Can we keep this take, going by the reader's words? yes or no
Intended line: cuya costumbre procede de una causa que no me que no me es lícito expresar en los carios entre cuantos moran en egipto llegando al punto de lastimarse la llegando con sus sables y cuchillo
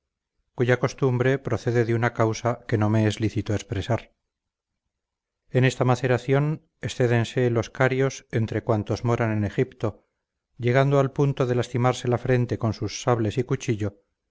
no